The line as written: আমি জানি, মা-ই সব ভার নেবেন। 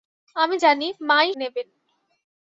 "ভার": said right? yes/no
no